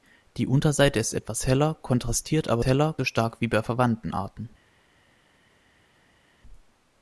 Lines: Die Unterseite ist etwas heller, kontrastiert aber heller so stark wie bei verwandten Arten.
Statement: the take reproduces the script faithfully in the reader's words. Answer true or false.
true